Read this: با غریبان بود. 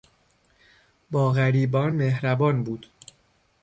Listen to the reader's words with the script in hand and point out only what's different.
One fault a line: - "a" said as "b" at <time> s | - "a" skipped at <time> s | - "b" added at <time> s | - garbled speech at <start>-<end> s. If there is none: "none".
- "مهربان" added at 1.9 s